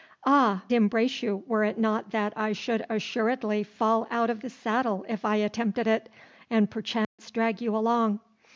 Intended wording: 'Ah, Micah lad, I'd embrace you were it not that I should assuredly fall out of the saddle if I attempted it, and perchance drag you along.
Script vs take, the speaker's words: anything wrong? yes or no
yes